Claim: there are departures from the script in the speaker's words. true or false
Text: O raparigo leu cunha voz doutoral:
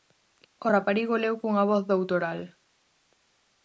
false